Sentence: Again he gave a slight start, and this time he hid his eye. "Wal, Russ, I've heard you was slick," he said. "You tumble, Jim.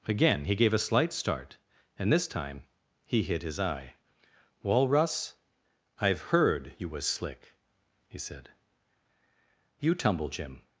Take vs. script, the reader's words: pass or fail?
pass